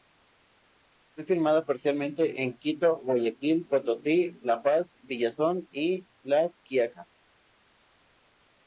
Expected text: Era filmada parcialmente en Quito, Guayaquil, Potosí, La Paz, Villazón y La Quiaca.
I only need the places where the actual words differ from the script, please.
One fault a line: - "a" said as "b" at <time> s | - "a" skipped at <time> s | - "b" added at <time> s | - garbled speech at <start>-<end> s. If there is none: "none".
- "Era" said as "Fue" at 1.1 s